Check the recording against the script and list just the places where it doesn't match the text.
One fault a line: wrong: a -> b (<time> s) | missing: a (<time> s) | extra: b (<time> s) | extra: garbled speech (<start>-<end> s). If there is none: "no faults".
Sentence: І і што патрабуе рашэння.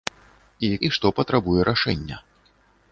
no faults